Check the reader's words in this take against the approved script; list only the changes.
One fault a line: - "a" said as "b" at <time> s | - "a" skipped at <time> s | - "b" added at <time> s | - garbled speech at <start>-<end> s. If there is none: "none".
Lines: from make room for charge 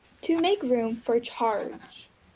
- "from" said as "to" at 0.2 s